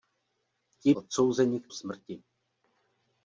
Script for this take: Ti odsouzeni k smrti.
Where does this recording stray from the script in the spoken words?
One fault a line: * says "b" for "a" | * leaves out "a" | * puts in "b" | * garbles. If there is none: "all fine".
all fine